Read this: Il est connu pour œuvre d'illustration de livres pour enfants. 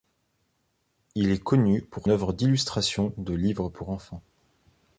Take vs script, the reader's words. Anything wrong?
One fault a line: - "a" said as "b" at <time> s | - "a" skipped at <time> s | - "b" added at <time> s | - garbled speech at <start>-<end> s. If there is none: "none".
none